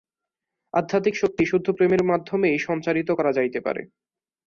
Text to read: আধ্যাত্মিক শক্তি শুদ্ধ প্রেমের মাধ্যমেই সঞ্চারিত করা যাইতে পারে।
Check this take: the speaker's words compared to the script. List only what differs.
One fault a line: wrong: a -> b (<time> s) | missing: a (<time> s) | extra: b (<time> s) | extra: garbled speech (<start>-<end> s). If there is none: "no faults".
no faults